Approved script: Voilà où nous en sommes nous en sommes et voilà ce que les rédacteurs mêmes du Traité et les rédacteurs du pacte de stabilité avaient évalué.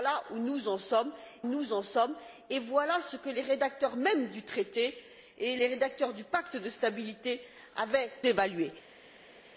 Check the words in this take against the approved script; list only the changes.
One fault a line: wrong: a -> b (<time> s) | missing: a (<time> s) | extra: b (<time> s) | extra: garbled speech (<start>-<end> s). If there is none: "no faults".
no faults